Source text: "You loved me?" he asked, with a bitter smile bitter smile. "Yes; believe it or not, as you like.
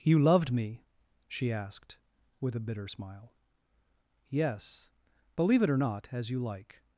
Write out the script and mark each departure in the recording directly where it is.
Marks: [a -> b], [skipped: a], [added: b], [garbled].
"You loved me?" [he -> she] asked, with a bitter smile [skipped: bitter smile.] "Yes; believe it or not, as you like.